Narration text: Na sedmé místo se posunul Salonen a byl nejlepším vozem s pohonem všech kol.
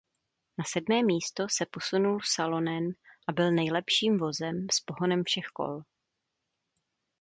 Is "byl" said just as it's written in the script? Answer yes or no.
yes